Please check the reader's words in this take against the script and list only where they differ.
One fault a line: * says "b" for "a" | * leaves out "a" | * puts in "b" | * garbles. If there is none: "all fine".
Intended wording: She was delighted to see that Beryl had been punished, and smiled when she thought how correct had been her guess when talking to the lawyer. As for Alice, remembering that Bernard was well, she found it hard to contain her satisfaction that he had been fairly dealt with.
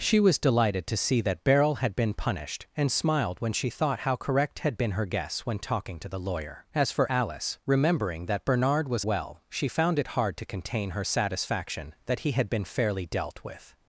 all fine